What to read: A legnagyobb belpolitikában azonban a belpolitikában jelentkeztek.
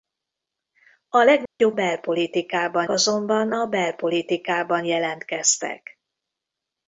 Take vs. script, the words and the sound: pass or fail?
fail